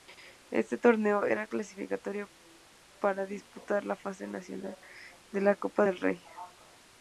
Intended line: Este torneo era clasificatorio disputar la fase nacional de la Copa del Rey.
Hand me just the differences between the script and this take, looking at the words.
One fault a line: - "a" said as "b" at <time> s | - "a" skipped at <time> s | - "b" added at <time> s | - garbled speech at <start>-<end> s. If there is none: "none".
- "para" added at 3.0 s